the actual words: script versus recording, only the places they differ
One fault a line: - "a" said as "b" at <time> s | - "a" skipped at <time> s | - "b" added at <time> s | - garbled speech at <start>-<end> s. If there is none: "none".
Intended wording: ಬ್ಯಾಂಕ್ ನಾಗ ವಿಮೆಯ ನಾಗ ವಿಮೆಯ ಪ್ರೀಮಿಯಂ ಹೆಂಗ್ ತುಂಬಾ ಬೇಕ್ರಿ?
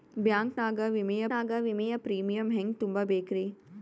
none